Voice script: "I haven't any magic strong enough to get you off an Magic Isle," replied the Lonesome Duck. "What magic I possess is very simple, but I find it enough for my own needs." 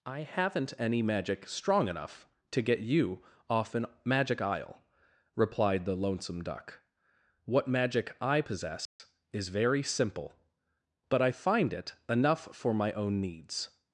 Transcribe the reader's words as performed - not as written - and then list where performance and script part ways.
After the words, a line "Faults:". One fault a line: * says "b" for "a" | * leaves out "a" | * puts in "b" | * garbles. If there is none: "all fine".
"I haven't any magic strong enough to get you off an Magic Isle," replied the Lonesome Duck. "What magic I possess is very simple, but I find it enough for my own needs."
Faults:
all fine